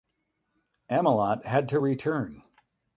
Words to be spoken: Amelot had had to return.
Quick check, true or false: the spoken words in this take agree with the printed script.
false